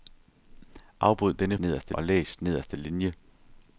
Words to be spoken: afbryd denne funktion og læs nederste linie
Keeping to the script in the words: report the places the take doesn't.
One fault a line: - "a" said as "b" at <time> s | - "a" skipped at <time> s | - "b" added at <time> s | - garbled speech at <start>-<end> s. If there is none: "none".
- "funktion" said as "nederste" at 1.6 s